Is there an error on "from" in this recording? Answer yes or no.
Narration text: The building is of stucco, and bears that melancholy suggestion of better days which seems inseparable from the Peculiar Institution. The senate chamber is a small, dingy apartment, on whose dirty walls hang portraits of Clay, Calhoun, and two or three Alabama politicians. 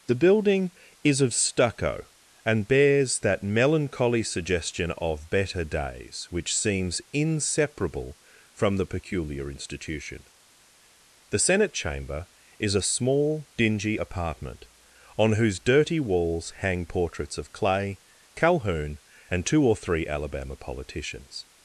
no